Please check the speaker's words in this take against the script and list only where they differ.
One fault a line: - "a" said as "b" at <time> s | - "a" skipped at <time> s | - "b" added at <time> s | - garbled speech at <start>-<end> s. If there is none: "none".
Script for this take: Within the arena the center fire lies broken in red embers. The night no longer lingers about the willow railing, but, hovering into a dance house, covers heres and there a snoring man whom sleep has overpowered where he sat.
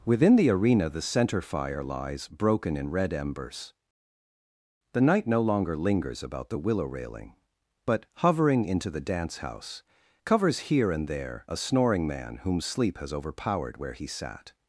- "a" said as "the" at 8.9 s
- "heres" said as "here" at 10.7 s